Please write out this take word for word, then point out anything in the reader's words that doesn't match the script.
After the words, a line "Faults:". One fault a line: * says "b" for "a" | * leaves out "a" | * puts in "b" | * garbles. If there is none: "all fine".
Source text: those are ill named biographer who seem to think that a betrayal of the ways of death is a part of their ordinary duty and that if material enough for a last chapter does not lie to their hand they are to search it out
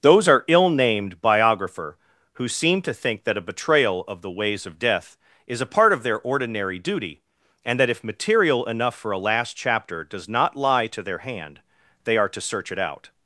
those are ill named biographer who seem to think that a betrayal of the ways of death is a part of their ordinary duty and that if material enough for a last chapter does not lie to their hand they are to search it out
Faults:
all fine